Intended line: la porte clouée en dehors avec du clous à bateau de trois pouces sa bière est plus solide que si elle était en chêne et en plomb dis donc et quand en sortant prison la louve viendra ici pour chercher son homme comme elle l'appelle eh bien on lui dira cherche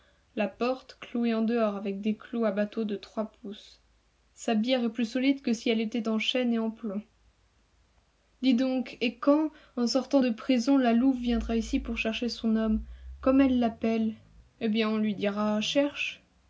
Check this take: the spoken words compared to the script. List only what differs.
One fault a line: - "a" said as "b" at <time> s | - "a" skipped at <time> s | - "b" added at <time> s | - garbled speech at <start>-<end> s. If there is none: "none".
- "du" said as "des" at 2.0 s
- "de" added at 10.2 s